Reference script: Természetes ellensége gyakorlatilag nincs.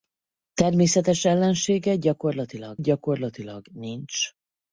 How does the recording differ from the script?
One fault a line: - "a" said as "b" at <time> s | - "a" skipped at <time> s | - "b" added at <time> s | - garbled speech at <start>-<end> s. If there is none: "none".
- "gyakorlatilag" added at 2.8 s